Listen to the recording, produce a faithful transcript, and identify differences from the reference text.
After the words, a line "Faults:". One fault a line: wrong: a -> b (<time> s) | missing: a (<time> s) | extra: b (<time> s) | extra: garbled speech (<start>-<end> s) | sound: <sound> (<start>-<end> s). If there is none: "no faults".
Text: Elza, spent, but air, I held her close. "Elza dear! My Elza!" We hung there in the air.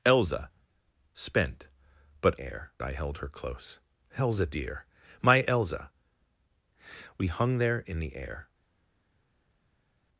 Elza, spent, but air, I held her close. "Elza dear! My Elza!" We hung there in the air.
Faults:
no faults